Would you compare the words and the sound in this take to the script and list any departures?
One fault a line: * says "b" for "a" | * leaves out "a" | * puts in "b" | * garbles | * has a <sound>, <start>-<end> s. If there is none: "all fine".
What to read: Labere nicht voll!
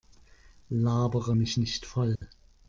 * puts in "mich"
* has a dropout, 2.2-2.2 s